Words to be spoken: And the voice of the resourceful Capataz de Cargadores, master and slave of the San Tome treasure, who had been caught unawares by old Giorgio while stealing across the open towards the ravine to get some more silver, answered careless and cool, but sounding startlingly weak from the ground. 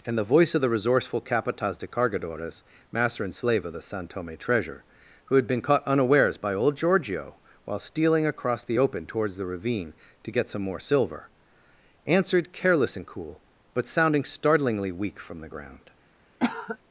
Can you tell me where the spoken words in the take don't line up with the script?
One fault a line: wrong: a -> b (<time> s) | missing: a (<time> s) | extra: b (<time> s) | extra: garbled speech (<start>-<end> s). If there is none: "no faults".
no faults